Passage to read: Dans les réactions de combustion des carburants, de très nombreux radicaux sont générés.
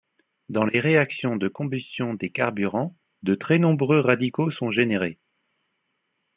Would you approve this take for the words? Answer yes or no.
yes